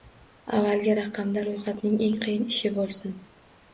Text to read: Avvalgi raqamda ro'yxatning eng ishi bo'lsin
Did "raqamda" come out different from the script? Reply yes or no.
no